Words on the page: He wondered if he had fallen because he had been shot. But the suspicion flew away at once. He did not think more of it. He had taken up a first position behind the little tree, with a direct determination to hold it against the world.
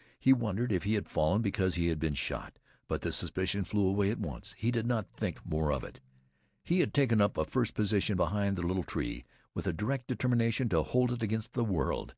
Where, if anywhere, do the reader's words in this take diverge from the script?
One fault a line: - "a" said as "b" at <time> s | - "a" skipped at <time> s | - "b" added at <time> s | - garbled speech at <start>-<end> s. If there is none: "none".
none